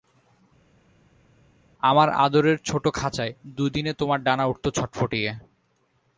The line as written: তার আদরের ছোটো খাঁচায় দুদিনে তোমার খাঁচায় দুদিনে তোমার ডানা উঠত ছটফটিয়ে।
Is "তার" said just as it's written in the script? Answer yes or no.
no